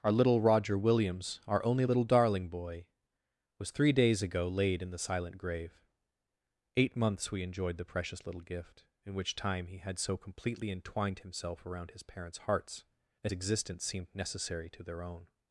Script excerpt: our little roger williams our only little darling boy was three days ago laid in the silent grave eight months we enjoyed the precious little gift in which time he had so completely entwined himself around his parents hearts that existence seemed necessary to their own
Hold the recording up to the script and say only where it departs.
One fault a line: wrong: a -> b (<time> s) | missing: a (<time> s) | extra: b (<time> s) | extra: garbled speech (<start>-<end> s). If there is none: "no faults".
no faults